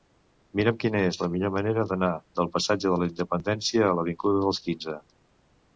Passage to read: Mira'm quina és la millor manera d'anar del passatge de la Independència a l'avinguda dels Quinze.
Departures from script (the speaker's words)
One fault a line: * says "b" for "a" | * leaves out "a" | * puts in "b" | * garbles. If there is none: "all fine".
all fine